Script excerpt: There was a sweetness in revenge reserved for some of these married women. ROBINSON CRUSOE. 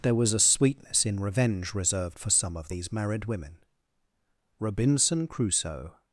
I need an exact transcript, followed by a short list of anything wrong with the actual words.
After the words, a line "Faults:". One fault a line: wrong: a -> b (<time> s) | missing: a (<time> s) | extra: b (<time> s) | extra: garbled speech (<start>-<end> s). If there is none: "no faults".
There was a sweetness in revenge reserved for some of these married women. ROBINSON CRUSOE.
Faults:
no faults